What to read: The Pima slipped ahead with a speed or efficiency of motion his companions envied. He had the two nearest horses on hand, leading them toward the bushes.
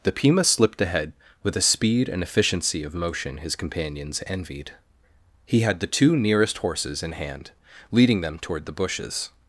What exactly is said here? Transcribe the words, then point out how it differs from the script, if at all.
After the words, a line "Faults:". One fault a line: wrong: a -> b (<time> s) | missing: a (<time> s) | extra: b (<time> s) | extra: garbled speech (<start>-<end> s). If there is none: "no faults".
The Pima slipped ahead with a speed and efficiency of motion his companions envied. He had the two nearest horses in hand, leading them toward the bushes.
Faults:
wrong: or -> and (2.1 s)
wrong: on -> in (7.0 s)